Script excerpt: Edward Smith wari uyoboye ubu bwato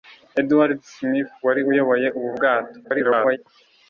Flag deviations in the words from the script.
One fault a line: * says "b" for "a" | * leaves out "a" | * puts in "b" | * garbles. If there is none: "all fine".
* garbles